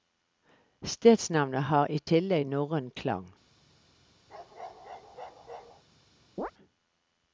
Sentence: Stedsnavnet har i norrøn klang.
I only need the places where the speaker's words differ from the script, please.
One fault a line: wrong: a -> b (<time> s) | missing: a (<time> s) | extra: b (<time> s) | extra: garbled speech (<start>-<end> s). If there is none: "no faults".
extra: tillegg (2.1 s)